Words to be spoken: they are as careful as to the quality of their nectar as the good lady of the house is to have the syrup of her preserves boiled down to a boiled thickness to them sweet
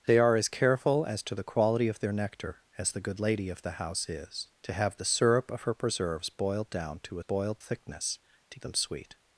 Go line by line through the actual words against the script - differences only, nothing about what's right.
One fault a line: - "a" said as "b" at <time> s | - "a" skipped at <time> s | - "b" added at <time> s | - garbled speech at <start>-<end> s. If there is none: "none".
none